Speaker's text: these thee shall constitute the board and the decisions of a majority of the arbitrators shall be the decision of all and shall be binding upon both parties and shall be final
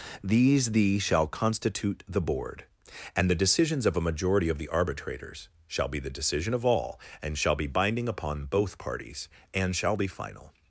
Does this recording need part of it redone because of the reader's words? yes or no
no